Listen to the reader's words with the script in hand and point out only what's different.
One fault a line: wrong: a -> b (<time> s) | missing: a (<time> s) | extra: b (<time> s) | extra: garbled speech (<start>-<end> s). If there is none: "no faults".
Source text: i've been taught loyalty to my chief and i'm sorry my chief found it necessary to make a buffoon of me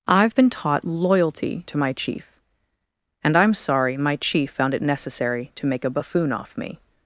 wrong: of -> off (6.3 s)